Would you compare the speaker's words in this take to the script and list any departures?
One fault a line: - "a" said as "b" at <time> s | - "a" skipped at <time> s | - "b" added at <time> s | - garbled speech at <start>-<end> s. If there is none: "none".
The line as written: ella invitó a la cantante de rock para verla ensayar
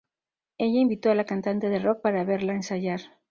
none